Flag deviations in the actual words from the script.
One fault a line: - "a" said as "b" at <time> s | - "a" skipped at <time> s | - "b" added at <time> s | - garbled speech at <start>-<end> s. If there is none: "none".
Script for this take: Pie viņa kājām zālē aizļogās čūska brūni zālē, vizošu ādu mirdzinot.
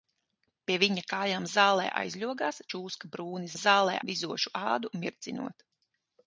none